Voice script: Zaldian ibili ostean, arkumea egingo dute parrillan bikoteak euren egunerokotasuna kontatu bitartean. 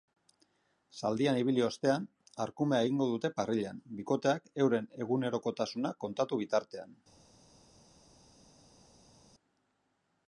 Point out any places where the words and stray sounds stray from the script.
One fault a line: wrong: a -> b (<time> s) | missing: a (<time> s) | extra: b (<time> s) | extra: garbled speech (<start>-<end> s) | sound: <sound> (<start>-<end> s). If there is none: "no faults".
no faults